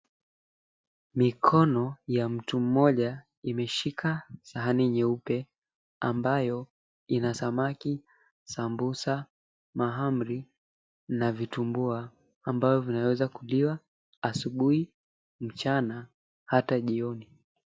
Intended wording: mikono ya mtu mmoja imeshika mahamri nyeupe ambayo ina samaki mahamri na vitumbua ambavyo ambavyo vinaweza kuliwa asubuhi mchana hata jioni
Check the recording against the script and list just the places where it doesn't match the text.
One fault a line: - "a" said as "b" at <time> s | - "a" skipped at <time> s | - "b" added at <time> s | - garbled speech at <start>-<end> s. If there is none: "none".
- "mahamri" said as "sahani" at 4.4 s
- "sambusa" added at 8.4 s
- "ambavyo" skipped at 12.8 s